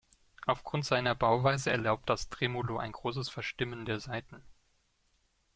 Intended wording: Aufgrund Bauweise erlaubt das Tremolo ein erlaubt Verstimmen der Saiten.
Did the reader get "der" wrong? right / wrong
right